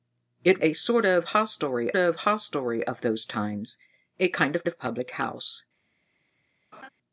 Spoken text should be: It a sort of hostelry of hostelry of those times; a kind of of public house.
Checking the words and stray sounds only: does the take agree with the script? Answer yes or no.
no